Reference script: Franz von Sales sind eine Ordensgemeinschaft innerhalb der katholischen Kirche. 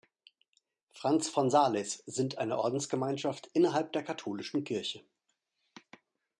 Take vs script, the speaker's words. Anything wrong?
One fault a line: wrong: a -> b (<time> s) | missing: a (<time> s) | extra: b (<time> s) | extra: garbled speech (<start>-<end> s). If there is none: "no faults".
no faults